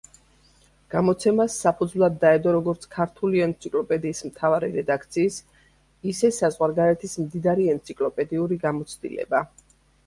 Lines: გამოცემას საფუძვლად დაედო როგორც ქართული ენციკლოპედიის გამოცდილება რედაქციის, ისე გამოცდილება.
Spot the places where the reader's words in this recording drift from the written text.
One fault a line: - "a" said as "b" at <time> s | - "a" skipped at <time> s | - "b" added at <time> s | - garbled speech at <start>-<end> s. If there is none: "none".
- "გამოცდილება" said as "მთავარი" at 4.3 s
- "საზღვარგარეთის მდიდარი ენციკლოპედიური" added at 6.4 s